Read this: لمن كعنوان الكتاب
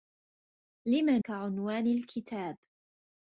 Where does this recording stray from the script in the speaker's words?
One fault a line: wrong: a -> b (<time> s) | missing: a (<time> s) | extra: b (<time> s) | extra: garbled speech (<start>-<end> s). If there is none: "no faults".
no faults